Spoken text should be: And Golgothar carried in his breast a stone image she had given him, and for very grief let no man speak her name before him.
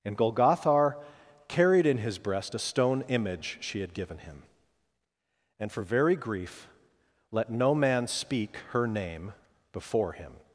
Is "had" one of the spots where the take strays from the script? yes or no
no